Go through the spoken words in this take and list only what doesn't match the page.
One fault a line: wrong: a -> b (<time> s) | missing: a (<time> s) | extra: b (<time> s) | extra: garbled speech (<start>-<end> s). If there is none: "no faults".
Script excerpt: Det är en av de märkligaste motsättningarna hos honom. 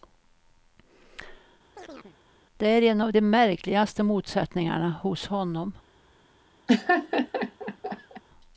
no faults